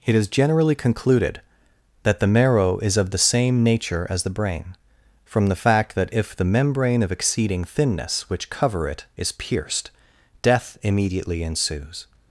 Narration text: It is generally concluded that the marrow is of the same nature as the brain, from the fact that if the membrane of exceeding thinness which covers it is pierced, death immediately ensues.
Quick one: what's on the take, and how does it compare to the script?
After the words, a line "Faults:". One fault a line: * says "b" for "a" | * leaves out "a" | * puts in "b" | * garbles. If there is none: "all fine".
It is generally concluded that the marrow is of the same nature as the brain, from the fact that if the membrane of exceeding thinness which cover it is pierced, death immediately ensues.
Faults:
* says "cover" for "covers"